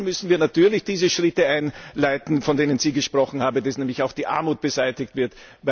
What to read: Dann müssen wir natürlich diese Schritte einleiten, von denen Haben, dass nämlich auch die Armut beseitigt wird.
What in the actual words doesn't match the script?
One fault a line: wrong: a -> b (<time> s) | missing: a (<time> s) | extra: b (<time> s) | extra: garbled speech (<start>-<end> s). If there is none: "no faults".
extra: Sie gesprochen (2.8 s)